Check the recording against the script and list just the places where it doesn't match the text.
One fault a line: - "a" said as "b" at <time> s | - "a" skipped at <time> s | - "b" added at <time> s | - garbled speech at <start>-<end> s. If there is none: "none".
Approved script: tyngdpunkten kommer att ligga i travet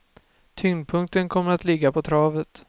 - "i" said as "på" at 1.9 s